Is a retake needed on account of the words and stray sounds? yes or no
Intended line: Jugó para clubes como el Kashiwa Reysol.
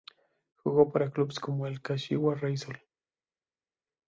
no